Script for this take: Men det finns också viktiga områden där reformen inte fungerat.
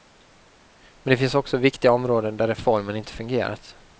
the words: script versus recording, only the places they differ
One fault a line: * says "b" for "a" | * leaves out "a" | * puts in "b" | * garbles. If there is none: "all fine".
all fine